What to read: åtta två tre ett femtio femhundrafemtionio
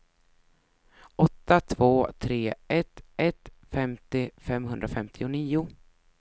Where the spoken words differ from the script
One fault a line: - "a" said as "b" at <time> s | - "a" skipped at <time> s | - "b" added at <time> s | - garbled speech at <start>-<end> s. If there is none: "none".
- "ett" added at 3.2 s